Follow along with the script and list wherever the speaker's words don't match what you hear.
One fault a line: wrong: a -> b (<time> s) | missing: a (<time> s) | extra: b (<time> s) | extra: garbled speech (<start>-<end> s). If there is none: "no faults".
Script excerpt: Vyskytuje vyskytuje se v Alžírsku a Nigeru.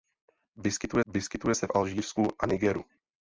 no faults